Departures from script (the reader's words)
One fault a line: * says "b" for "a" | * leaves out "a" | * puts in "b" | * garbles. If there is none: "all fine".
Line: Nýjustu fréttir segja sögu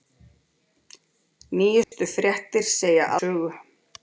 all fine